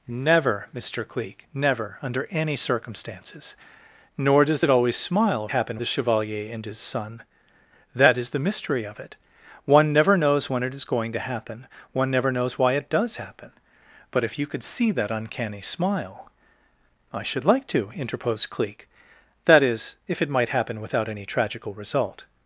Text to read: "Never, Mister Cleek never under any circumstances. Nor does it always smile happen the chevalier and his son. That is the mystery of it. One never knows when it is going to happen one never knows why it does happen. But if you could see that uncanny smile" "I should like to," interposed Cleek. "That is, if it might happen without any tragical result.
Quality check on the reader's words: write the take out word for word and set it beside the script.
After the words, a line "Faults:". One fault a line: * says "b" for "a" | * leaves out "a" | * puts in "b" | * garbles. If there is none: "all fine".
"Never, Mister Cleek never under any circumstances. Nor does it always smile happen the chevalier and his son. That is the mystery of it. One never knows when it is going to happen one never knows why it does happen. But if you could see that uncanny smile" "I should like to," interposed Cleek. "That is, if it might happen without any tragical result.
Faults:
all fine